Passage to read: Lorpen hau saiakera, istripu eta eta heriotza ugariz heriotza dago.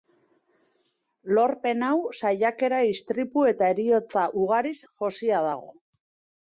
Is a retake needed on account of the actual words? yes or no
yes